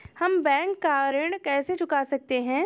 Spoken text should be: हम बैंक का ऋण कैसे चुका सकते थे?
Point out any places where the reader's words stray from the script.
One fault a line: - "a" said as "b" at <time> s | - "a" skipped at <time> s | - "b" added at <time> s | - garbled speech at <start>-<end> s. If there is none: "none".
- "थे" said as "हैं" at 2.4 s